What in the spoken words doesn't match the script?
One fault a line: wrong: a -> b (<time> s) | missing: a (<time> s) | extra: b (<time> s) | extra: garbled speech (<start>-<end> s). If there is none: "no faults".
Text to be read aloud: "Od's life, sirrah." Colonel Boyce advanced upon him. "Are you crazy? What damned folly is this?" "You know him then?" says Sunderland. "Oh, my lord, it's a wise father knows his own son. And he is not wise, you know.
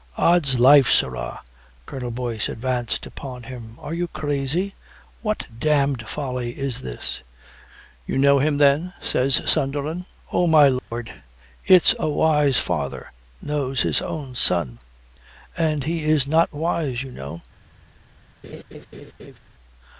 no faults